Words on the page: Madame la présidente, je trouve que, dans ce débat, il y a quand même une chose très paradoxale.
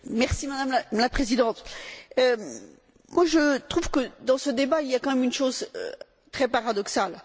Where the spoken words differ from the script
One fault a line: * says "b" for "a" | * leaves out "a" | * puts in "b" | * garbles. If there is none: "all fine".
all fine